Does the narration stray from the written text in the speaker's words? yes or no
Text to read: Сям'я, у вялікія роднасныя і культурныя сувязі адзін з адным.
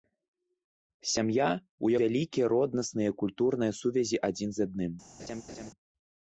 no